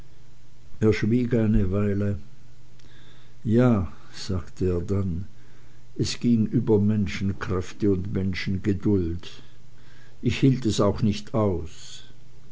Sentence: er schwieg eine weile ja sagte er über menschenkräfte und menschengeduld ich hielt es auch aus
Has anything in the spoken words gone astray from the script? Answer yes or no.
yes